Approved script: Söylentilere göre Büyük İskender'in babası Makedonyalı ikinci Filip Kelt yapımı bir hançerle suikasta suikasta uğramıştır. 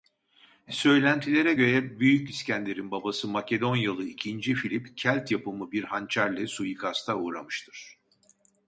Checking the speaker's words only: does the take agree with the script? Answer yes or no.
no